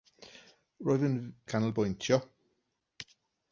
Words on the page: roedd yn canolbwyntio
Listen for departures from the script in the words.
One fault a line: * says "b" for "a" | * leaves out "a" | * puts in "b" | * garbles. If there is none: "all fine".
all fine